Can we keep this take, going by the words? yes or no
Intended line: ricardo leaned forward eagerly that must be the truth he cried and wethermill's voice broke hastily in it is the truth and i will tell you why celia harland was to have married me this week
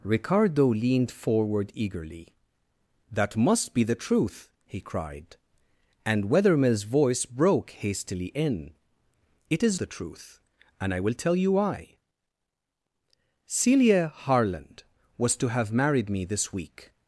yes